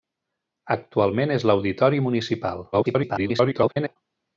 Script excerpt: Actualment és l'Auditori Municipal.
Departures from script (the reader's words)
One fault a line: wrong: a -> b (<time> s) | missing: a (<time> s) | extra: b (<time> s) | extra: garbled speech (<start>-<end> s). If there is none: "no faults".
extra: garbled speech (2.7-4.0 s)